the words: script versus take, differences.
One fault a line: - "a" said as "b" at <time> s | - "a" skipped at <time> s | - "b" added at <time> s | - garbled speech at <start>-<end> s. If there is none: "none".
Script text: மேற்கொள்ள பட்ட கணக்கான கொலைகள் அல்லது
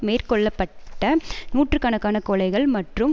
- "நூற்று" added at 1.5 s
- "அல்லது" said as "மற்றும்" at 2.7 s